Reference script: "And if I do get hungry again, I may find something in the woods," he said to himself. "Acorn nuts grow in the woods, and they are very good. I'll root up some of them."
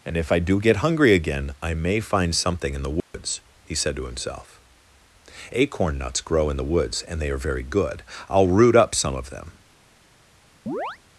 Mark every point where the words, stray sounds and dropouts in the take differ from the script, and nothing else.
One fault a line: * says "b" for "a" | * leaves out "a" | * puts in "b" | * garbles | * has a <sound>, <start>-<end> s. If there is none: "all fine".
* has a dropout, 3.0-3.1 s
* has a chirp, 10.7-11.0 s